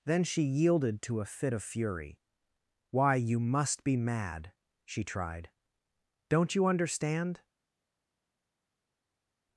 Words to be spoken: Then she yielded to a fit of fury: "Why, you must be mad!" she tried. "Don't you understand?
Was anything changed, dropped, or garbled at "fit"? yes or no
no